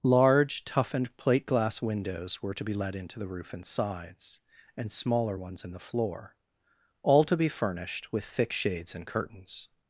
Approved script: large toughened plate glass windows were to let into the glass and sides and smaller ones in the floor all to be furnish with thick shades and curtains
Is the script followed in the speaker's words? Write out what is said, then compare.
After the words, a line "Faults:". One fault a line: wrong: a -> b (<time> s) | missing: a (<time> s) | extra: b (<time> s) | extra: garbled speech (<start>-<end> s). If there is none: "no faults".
large toughened plate glass windows were to be let into the roof and sides and smaller ones in the floor all to be furnished with thick shades and curtains
Faults:
extra: be (2.6 s)
wrong: glass -> roof (3.3 s)
wrong: furnish -> furnished (7.5 s)